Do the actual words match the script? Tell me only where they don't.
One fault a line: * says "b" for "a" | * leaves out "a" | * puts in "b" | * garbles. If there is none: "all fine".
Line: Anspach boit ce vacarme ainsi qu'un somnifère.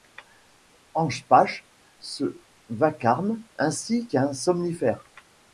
* leaves out "boit"